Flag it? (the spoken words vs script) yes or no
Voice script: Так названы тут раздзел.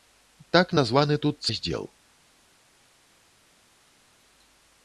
no